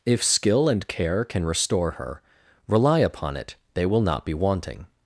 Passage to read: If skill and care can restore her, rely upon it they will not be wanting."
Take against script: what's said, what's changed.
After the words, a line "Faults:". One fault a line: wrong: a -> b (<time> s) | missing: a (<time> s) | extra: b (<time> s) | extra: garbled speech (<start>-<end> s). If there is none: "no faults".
If skill and care can restore her, rely upon it they will not be wanting."
Faults:
no faults